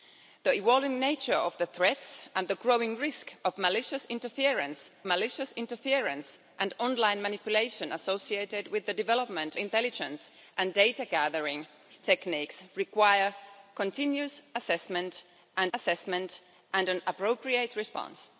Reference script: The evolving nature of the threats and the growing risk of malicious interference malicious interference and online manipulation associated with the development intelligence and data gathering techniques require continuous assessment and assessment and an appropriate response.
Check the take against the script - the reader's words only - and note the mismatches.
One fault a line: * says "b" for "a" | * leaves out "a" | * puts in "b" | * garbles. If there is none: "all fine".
all fine